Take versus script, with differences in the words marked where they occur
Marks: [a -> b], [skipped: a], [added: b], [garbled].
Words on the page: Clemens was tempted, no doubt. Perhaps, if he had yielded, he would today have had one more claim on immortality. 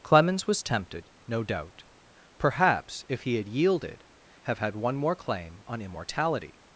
Clemens was tempted, no doubt. Perhaps, if he had yielded, [skipped: he would today] have had one more claim on immortality.